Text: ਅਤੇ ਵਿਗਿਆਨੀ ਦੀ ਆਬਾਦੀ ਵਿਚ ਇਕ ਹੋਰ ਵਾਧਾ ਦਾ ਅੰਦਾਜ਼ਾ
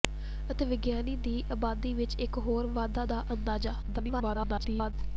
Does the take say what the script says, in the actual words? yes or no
no